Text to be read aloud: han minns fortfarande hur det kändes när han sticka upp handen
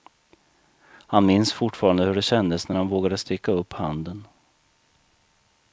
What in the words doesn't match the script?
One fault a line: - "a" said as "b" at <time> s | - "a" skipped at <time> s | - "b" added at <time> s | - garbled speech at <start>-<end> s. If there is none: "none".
- "vågade" added at 2.9 s